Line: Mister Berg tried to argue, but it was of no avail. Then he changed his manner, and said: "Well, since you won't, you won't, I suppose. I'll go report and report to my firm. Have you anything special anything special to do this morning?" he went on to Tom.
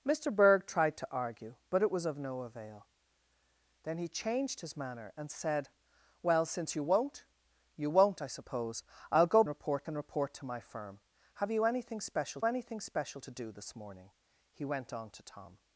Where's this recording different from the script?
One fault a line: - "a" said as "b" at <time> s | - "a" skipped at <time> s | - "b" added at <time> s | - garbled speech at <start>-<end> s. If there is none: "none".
none